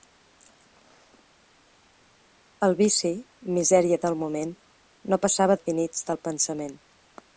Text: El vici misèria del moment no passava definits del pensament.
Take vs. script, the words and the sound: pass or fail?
pass